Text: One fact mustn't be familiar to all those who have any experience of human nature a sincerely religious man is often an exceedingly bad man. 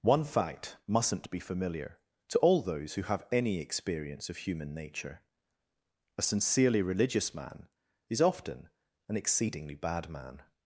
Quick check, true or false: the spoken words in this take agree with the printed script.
true